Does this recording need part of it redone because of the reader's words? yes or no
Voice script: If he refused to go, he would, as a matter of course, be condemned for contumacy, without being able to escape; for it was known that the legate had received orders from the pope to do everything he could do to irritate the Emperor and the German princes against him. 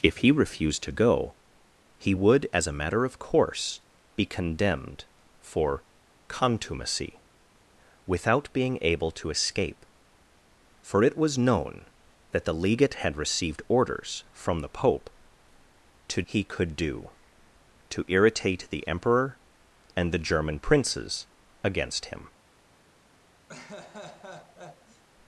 yes